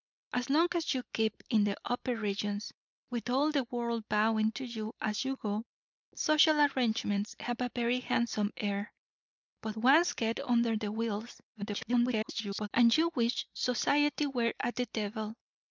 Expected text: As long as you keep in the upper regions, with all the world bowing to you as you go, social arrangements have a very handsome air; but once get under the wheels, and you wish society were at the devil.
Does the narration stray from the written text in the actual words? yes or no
yes